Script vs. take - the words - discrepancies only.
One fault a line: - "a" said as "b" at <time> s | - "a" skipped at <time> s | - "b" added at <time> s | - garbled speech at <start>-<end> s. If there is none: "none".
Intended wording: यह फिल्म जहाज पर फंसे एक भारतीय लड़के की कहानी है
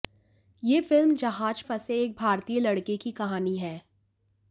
- "पर" skipped at 1.6 s